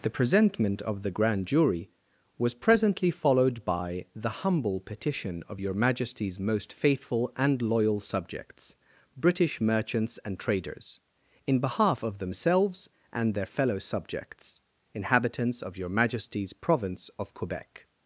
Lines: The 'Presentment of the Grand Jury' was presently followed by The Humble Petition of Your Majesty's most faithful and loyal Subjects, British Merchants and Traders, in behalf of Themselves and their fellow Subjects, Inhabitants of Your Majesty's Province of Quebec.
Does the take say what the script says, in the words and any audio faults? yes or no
yes